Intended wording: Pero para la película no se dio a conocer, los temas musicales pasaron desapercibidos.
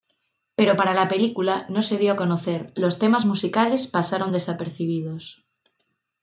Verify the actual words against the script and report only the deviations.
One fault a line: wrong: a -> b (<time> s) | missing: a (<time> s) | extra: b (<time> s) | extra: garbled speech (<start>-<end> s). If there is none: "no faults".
no faults